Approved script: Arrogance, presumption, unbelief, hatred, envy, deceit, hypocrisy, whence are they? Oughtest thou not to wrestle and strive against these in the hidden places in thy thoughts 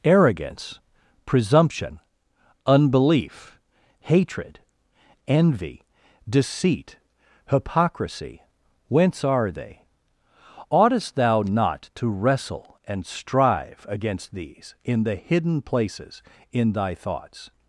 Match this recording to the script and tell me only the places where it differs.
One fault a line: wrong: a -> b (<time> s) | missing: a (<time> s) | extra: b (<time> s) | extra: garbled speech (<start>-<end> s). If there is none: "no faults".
no faults